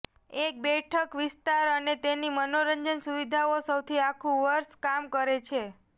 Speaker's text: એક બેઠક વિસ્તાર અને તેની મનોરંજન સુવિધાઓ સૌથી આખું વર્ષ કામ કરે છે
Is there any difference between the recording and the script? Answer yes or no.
no